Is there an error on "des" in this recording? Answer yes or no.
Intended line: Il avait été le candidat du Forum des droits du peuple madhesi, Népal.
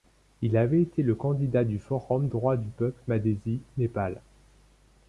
yes